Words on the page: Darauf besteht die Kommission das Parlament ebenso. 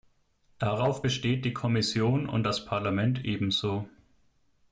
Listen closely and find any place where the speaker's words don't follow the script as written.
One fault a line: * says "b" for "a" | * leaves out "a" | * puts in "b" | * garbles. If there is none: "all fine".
* puts in "und"